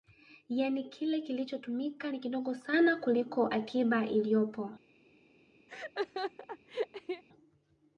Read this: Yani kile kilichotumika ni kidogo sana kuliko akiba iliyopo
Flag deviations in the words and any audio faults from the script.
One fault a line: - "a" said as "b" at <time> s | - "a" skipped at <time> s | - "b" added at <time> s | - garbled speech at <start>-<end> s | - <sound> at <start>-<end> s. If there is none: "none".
- laugh at 5.7-7.2 s